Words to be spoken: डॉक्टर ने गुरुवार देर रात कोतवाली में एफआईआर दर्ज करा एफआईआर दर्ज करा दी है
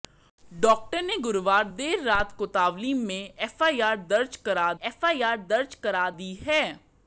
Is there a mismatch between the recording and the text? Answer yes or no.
no